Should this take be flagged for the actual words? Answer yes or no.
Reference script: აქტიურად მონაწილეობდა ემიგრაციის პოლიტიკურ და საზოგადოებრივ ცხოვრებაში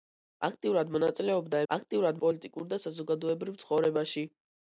yes